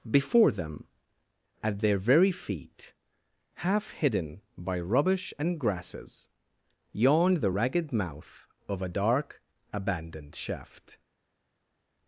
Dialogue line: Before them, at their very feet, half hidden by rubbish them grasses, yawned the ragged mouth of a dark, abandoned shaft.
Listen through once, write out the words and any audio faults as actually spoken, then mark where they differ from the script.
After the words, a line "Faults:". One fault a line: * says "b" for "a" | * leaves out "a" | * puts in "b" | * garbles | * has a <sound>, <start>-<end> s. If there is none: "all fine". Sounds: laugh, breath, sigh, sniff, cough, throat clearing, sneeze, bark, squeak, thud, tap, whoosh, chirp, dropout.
Before them, at their very feet, half hidden by rubbish and grasses, yawned the ragged mouth of a dark, abandoned shaft.
Faults:
* says "and" for "them"